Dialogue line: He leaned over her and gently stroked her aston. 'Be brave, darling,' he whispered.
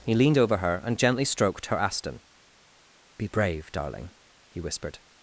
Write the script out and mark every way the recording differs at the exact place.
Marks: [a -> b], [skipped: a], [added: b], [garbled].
He leaned over her and gently stroked her aston. 'Be brave, darling,' he whispered.